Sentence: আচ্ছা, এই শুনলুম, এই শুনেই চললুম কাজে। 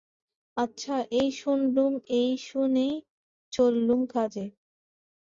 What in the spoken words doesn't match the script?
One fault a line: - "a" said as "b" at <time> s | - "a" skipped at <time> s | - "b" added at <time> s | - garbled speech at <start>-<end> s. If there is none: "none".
none